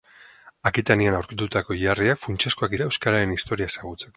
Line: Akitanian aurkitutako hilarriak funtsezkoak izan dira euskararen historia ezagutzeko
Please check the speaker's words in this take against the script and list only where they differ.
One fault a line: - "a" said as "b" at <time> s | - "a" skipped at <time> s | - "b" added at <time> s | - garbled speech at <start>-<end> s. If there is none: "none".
- "izan" skipped at 2.8 s